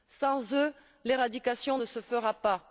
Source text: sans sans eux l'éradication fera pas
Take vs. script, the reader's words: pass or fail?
fail